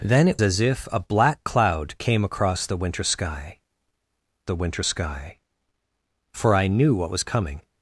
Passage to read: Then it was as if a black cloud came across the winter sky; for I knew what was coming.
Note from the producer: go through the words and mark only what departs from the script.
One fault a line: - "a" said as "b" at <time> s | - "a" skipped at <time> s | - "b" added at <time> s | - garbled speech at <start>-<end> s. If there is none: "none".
- "was" skipped at 0.4 s
- "the winter sky" added at 4.4 s